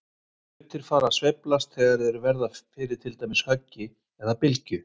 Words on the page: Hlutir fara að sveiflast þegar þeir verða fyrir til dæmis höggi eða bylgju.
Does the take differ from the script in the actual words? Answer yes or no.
no